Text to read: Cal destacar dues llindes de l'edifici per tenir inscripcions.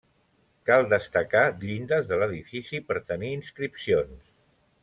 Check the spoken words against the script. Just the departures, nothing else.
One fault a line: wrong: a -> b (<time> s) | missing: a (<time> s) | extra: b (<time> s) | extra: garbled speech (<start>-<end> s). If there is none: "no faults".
missing: dues (1.4 s)